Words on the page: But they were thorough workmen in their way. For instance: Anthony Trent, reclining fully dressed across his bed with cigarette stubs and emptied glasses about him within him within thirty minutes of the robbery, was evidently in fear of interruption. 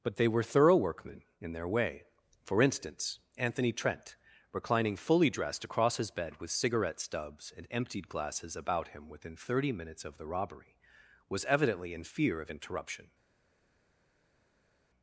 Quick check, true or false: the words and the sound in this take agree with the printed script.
false